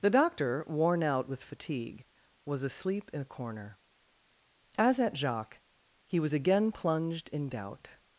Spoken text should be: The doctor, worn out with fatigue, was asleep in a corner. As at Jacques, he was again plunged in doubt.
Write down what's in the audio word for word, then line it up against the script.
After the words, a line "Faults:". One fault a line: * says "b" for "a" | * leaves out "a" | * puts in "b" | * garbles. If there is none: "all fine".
The doctor, worn out with fatigue, was asleep in a corner. As at Jacques, he was again plunged in doubt.
Faults:
all fine